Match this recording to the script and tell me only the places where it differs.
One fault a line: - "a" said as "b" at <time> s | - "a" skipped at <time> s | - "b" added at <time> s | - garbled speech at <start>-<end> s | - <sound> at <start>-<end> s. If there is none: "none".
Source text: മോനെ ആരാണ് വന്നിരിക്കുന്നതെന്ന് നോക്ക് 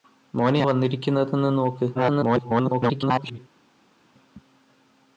- "ആരാണ്" skipped at 0.6 s
- garbled speech at 1.9-3.4 s